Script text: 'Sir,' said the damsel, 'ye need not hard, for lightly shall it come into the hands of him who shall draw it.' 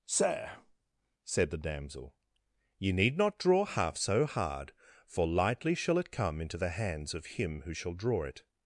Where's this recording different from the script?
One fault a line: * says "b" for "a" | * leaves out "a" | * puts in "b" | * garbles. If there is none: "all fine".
* puts in "draw half so"